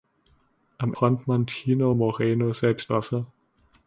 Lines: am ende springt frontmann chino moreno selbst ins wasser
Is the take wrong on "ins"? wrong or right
wrong